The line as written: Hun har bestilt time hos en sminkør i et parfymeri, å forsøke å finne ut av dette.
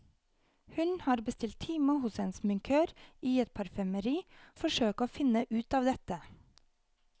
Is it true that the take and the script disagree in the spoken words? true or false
false